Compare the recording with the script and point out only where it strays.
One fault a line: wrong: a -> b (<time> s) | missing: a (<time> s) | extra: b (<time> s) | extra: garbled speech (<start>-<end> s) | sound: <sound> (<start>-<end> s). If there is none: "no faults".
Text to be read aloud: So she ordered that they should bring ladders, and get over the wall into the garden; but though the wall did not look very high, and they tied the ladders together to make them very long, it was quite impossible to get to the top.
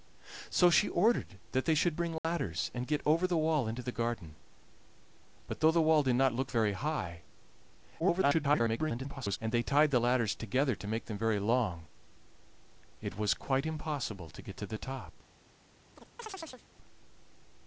sound: dropout (2.2-2.2 s)
extra: garbled speech (8.0-9.4 s)
sound: chirp (16.0-16.7 s)